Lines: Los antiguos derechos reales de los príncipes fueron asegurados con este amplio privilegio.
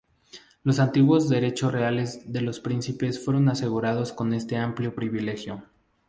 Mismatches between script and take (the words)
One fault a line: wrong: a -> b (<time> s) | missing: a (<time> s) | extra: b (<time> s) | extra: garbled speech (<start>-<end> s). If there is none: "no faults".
no faults